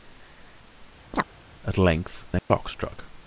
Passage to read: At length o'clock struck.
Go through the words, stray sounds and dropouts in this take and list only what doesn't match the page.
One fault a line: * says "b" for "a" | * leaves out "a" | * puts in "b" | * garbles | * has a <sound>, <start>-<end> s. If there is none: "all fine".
* has a chirp, 1.1-1.3 s
* has a dropout, 2.4-2.5 s